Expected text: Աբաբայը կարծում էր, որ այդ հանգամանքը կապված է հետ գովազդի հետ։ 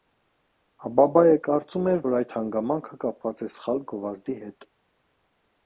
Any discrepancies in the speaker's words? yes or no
yes